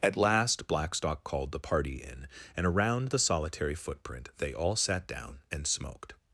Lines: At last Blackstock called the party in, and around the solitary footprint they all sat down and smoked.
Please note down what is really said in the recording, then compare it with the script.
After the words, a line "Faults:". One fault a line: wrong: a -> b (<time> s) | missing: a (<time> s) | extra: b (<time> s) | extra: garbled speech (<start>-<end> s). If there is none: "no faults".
At last Blackstock called the party in, and around the solitary footprint they all sat down and smoked.
Faults:
no faults